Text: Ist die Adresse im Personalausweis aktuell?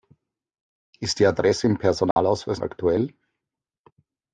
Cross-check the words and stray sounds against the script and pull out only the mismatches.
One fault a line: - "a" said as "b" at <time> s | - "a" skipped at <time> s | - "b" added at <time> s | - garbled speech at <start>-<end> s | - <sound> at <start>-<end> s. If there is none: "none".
- dropout at 2.1-2.2 s